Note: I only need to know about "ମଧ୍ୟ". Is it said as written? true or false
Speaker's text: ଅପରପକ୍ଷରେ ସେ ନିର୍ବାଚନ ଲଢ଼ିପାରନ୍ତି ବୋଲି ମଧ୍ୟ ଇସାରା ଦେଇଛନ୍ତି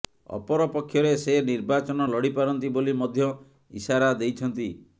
true